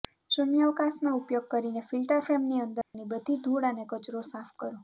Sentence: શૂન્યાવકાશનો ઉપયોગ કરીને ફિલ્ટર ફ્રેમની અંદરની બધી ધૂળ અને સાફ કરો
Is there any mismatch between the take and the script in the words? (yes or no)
yes